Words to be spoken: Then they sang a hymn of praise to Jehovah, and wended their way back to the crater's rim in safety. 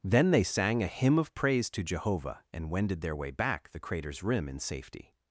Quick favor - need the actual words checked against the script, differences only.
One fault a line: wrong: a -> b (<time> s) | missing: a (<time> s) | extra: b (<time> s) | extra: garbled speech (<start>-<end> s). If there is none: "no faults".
missing: to (3.7 s)